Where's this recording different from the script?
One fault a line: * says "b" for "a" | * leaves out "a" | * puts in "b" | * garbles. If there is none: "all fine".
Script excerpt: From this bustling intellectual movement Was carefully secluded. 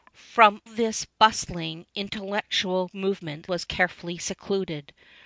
all fine